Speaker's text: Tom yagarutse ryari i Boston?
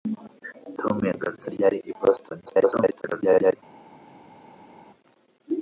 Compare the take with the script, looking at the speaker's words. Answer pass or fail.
fail